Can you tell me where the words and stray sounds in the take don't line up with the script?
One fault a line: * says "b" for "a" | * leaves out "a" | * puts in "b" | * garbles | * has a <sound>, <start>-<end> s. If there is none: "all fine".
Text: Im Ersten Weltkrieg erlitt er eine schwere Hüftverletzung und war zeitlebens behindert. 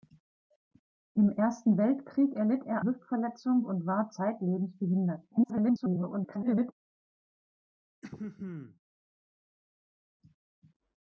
* leaves out "eine schwere"
* garbles
* has a throat clearing, 8.0-8.8 s